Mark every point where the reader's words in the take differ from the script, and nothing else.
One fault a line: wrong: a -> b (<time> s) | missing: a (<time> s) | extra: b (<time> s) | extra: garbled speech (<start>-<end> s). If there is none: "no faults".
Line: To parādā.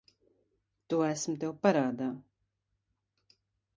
extra: esmu tev (1.1 s)